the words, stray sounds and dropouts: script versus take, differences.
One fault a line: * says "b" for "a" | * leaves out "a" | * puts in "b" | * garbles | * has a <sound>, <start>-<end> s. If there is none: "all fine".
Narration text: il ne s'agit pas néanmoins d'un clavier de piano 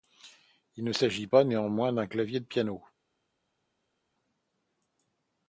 all fine